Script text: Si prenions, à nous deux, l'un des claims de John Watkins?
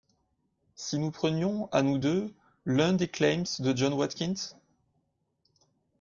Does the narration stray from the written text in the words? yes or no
yes